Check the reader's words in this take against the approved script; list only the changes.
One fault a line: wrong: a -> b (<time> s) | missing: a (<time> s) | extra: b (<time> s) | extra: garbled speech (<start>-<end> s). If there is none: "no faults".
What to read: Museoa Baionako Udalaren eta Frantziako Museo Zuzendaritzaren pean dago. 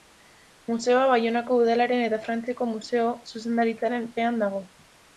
no faults